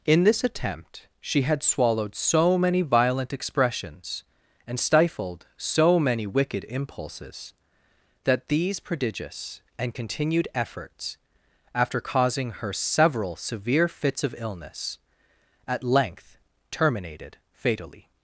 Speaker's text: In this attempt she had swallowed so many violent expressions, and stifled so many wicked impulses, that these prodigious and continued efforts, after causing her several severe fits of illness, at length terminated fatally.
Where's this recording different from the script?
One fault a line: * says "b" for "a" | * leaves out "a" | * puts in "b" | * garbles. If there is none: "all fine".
all fine